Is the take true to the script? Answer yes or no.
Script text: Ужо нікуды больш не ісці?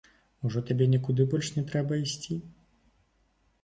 no